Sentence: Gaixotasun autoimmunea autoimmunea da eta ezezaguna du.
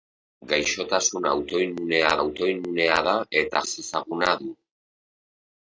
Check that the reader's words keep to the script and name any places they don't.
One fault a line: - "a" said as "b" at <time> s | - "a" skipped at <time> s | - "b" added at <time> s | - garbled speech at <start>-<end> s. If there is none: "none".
none